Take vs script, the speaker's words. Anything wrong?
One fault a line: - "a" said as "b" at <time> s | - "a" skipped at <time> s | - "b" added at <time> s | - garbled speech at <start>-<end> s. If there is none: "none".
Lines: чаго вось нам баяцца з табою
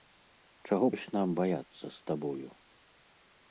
none